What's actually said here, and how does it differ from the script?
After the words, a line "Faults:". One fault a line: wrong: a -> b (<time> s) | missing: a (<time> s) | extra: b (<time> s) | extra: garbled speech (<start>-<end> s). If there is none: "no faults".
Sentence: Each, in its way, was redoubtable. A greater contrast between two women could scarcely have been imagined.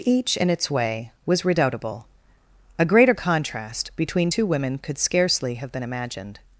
Each, in its way, was redoubtable. A greater contrast between two women could scarcely have been imagined.
Faults:
no faults